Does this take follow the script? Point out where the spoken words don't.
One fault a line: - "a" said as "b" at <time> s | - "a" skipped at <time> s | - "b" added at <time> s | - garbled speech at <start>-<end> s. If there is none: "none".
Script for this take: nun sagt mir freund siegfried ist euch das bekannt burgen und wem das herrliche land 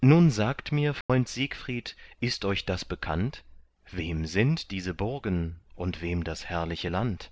- "wem sind diese" added at 3.9 s